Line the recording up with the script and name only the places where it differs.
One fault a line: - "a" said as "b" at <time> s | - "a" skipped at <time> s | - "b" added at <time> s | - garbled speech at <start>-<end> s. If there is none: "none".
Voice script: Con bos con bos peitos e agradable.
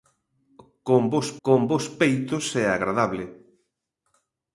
none